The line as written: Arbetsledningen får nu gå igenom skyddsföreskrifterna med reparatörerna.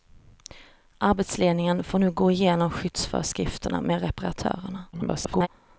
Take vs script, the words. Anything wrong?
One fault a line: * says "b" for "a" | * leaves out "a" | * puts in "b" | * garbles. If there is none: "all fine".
* garbles